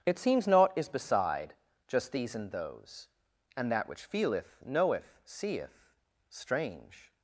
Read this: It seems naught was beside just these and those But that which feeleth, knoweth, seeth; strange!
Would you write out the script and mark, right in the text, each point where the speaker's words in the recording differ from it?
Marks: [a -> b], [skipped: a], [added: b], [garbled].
It seems naught [was -> is] beside just these and those [But -> And] that which feeleth, knoweth, seeth; strange!